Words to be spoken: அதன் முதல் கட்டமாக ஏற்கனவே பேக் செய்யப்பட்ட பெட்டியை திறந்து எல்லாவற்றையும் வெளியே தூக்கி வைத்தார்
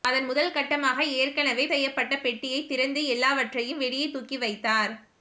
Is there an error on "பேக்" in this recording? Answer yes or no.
yes